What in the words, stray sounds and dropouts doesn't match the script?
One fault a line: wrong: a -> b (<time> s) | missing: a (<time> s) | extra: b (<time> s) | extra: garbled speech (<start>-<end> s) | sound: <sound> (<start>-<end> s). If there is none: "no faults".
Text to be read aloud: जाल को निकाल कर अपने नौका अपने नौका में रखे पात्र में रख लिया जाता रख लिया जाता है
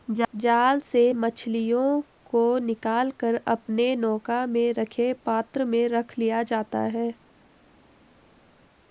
extra: से मछलियों (0.8 s)
missing: अपने नौका (4.4 s)
missing: रख लिया जाता (6.8 s)